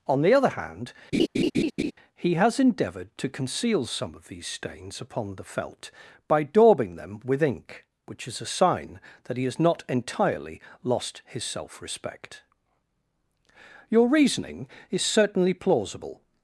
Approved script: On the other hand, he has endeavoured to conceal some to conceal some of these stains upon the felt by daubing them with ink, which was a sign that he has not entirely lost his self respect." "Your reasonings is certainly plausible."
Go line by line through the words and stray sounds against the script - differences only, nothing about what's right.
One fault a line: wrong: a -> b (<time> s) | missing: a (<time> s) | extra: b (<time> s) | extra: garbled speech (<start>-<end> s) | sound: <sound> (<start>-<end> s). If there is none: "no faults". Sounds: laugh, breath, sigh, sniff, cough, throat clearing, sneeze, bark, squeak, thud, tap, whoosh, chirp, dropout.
sound: laugh (1.1-1.9 s)
missing: to conceal some (4.1 s)
wrong: was -> is (8.3 s)
wrong: reasonings -> reasoning (14.1 s)